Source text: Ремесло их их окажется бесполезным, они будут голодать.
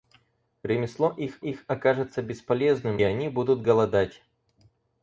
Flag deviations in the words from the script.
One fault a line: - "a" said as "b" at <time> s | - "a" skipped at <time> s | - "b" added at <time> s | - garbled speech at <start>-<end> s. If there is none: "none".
none